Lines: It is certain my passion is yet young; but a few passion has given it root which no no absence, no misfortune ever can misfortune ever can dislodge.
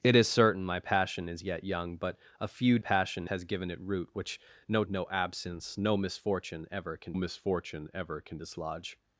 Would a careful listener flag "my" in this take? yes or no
no